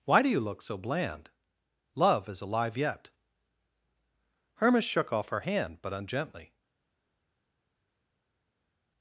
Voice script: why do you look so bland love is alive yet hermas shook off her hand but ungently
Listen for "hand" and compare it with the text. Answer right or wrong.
right